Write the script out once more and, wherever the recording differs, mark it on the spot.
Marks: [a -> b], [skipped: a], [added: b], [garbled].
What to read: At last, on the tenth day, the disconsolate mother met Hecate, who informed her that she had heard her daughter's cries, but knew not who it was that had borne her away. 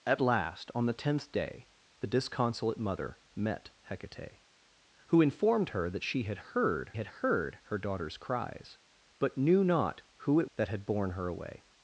At last, on the tenth day, the disconsolate mother met Hecate, who informed her that she had heard [added: had heard] her daughter's cries, but knew not who it [skipped: was] that had borne her away.